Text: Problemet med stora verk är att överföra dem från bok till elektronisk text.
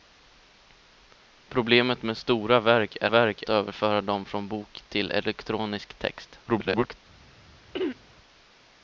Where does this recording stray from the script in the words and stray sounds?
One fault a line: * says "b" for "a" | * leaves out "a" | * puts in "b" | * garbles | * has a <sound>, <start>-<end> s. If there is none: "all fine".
* says "verk" for "att"
* garbles
* has a throat clearing, 7.7-8.0 s